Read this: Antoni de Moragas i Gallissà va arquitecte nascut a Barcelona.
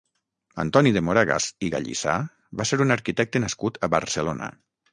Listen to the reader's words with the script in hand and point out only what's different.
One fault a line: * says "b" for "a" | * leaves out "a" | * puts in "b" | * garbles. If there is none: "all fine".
* puts in "ser un"